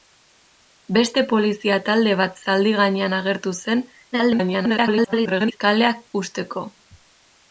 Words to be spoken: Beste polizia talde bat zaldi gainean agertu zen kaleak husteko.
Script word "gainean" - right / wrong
right